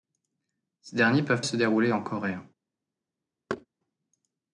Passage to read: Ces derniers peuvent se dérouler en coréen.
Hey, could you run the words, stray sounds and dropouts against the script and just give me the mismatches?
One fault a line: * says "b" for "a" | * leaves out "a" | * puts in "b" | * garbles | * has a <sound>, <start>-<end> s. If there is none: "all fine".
* has a thud, 3.5-3.7 s